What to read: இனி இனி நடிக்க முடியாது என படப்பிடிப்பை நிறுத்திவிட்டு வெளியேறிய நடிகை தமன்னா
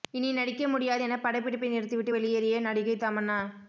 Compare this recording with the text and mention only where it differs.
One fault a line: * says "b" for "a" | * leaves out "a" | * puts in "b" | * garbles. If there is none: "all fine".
* leaves out "இனி"